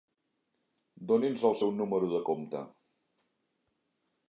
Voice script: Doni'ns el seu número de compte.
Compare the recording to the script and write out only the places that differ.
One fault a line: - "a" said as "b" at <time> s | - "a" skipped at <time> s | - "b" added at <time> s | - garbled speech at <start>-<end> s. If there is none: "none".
none